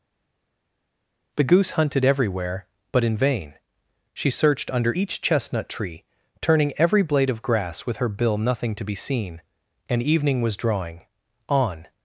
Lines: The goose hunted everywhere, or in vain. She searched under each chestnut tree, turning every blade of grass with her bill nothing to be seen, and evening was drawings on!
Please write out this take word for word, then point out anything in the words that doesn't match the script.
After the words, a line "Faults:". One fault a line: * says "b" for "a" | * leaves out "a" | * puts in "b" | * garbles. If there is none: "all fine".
The goose hunted everywhere, but in vain. She searched under each chestnut tree, turning every blade of grass with her bill nothing to be seen, and evening was drawing on!
Faults:
* says "but" for "or"
* says "drawing" for "drawings"